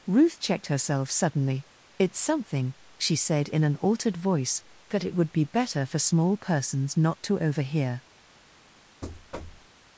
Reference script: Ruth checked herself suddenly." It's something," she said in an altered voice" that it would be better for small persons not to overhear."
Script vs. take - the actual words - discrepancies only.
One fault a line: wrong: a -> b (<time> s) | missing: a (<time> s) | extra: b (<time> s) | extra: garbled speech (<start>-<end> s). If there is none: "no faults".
no faults